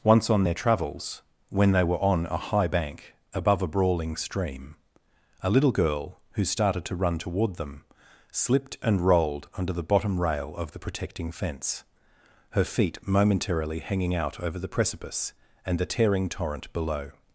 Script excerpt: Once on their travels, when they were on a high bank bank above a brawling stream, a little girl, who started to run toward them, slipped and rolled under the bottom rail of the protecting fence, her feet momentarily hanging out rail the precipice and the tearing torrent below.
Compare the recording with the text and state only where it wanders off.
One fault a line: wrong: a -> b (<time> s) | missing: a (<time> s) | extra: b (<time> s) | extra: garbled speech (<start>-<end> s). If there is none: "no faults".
missing: bank (3.1 s)
wrong: rail -> over (14.4 s)